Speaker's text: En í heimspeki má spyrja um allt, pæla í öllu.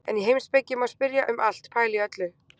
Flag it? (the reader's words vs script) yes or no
no